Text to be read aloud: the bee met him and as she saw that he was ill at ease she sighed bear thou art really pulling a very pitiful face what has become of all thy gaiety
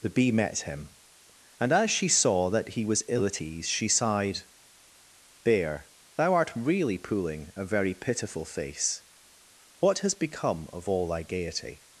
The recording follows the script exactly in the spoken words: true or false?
true